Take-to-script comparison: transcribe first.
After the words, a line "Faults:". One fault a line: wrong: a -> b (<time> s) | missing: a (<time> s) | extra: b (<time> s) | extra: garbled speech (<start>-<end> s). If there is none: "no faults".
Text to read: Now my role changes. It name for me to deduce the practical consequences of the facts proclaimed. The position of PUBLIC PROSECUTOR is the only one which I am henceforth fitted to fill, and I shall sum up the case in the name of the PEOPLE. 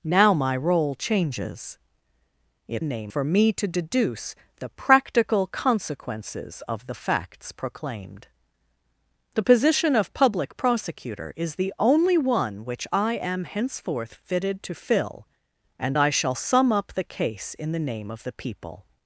Now my role changes. It name for me to deduce the practical consequences of the facts proclaimed. The position of PUBLIC PROSECUTOR is the only one which I am henceforth fitted to fill, and I shall sum up the case in the name of the PEOPLE.
Faults:
no faults